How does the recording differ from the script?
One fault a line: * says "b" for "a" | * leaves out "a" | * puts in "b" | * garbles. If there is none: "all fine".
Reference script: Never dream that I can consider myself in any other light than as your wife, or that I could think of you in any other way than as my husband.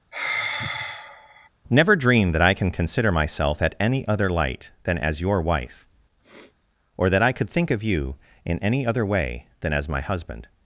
* says "at" for "in"